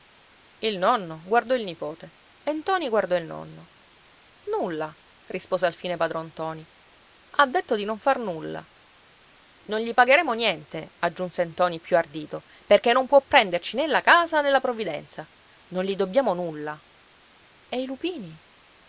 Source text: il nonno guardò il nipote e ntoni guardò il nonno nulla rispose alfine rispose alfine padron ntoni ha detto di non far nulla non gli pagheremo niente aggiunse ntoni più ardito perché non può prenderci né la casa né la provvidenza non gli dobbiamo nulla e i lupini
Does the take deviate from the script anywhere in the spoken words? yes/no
yes